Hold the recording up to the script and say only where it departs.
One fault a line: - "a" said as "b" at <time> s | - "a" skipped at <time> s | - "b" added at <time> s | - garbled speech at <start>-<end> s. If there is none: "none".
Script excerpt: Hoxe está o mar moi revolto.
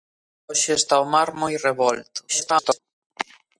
- garbled speech at 2.3-2.8 s